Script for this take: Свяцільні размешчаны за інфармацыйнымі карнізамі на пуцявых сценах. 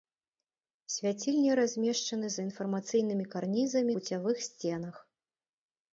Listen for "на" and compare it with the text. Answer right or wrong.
wrong